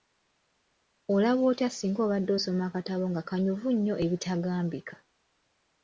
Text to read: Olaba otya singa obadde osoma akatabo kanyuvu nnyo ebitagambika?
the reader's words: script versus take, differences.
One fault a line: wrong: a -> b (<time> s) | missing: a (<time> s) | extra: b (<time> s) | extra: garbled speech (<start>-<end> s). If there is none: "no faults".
extra: nga (3.1 s)